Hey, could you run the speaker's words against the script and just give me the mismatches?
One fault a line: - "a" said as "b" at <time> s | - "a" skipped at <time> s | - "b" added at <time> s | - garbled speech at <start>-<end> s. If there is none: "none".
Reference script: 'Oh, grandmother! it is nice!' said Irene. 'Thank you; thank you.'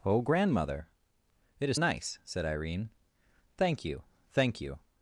none